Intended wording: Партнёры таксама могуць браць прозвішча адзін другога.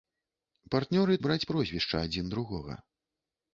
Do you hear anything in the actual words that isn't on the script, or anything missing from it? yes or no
yes